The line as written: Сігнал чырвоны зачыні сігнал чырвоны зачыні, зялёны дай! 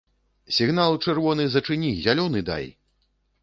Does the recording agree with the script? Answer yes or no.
no